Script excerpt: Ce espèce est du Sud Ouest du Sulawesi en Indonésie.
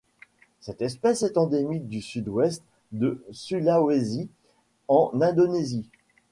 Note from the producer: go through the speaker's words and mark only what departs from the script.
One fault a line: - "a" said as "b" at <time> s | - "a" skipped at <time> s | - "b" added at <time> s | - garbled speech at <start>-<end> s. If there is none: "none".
- "Ce" said as "Cette" at 0.6 s
- "endémique" added at 1.4 s